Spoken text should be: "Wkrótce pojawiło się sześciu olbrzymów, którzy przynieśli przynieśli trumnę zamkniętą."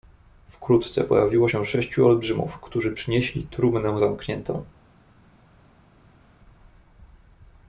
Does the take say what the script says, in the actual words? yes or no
no